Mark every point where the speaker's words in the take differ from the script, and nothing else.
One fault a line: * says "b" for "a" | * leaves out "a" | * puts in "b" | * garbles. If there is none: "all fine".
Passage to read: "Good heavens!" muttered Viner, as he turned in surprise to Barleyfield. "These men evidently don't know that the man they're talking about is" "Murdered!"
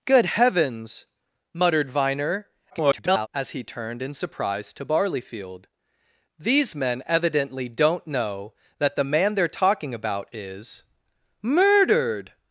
* garbles